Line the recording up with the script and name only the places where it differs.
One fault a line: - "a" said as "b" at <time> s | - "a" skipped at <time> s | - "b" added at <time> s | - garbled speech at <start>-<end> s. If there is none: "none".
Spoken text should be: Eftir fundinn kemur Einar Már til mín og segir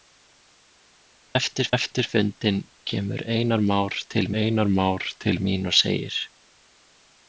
- "eftir" added at 1.8 s
- "Einar Már til" added at 4.4 s